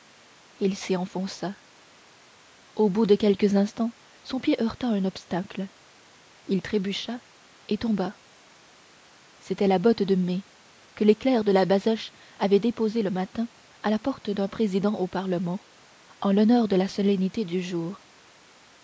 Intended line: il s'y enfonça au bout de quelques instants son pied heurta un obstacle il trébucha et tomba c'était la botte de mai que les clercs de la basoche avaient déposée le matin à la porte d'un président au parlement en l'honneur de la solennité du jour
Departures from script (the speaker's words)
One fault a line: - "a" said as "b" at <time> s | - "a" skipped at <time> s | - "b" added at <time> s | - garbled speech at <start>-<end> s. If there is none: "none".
none